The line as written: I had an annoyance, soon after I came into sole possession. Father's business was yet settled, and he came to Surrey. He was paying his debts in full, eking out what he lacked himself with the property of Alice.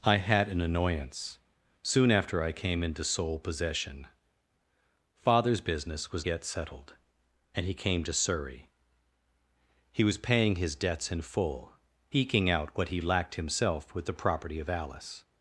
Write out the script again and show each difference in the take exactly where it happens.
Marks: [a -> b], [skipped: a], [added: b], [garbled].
I had an annoyance, soon after I came into sole possession. Father's business was yet settled, and he came to Surrey. He was paying his debts in full, eking out what he lacked himself with the property of Alice.